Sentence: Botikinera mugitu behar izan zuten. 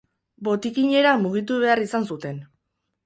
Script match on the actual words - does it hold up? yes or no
yes